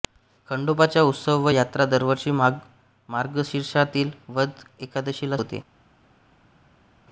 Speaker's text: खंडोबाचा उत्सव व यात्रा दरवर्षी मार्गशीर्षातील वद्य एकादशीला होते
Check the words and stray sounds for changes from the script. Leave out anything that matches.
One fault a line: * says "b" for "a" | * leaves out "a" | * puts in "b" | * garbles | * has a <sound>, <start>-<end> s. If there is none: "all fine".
all fine